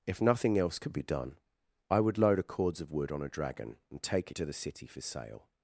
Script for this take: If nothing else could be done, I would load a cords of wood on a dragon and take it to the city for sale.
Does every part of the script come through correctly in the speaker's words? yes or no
yes